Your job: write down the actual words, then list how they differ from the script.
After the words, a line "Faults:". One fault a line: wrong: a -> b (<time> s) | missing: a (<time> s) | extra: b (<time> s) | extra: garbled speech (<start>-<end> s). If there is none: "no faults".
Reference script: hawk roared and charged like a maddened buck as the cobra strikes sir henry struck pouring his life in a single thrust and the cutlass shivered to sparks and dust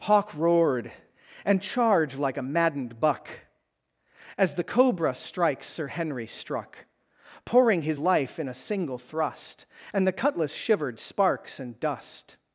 hawk roared and charged like a maddened buck as the cobra strikes sir henry struck pouring his life in a single thrust and the cutlass shivered sparks and dust
Faults:
missing: to (11.0 s)